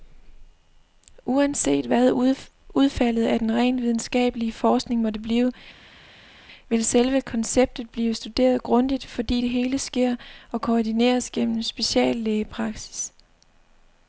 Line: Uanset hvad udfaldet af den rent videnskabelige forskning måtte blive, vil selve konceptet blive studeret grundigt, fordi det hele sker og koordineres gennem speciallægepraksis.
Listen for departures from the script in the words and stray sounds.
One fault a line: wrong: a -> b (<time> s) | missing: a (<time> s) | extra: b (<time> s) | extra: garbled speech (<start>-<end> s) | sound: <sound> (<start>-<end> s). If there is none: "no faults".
no faults